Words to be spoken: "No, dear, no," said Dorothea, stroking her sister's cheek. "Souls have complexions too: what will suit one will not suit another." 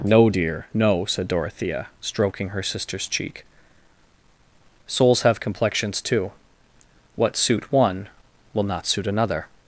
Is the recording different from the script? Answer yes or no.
yes